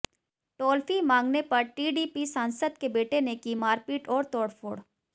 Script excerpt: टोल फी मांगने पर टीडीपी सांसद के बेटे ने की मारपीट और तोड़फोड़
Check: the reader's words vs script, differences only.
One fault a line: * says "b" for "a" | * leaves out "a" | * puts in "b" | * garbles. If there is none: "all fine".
all fine